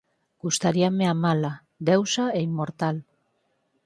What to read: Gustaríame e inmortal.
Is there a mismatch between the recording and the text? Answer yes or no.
yes